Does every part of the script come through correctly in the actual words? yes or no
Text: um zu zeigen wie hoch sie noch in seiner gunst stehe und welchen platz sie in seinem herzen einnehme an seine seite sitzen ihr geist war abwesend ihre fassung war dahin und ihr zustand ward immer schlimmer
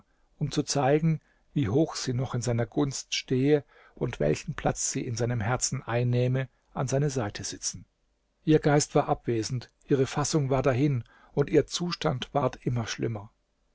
yes